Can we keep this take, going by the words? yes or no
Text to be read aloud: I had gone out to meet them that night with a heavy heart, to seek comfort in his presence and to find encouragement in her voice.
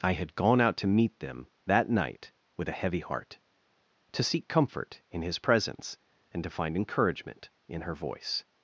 yes